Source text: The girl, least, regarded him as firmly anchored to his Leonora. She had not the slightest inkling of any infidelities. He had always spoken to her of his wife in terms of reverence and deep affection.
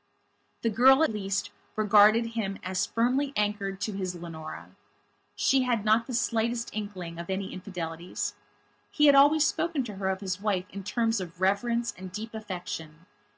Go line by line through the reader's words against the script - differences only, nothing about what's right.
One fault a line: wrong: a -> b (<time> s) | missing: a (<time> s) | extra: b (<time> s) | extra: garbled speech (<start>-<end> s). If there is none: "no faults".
no faults